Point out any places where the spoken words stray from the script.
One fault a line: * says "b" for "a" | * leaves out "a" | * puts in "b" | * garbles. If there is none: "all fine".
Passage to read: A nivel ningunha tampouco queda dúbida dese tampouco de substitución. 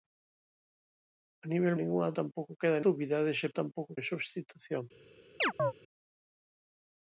all fine